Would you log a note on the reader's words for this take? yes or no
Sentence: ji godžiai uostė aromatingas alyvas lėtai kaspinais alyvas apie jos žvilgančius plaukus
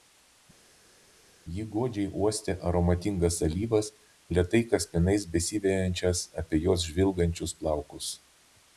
yes